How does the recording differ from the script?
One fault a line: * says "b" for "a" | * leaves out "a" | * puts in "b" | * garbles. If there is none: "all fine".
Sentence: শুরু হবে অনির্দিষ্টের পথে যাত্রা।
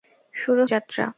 * leaves out "হবে অনির্দিষ্টের পথে"